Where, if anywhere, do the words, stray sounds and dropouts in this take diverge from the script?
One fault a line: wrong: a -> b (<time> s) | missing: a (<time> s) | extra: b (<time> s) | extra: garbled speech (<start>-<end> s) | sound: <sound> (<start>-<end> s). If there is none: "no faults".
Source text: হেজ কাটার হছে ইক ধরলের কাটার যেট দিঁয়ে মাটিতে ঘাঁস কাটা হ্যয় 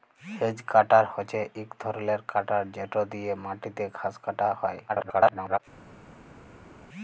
extra: garbled speech (4.9-5.6 s)